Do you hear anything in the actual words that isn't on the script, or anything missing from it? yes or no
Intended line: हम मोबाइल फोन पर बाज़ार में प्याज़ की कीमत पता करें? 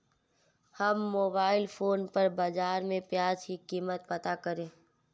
no